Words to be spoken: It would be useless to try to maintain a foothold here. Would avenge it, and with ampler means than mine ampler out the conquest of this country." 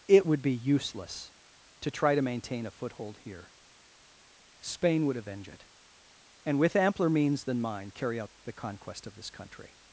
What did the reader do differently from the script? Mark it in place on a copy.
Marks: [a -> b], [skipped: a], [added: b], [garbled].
It would be useless to try to maintain a foothold here. [added: Spain] Would avenge it, and with ampler means than mine [ampler -> carry] out the conquest of this country."